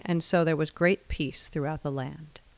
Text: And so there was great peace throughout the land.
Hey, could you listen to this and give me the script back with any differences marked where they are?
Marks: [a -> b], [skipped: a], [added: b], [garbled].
And so there was great peace throughout the land.